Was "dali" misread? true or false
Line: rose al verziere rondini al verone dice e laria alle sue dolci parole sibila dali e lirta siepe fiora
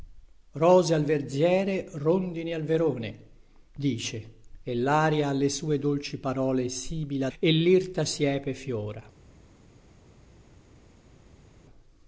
true